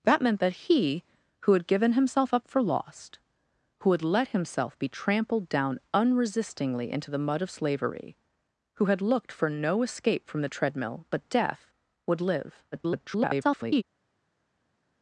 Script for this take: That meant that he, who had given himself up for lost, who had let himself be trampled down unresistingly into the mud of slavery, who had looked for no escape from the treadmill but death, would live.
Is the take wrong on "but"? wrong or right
right